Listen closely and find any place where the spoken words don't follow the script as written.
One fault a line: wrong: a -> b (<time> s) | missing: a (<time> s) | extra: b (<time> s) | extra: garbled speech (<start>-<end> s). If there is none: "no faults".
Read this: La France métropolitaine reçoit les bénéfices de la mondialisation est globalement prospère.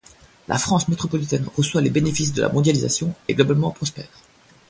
no faults